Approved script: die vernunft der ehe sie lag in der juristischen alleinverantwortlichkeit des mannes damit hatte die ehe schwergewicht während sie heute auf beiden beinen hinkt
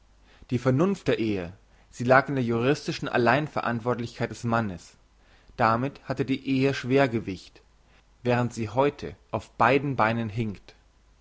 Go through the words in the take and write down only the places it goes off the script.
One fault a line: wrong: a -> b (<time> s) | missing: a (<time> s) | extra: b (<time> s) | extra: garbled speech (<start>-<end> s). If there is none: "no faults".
no faults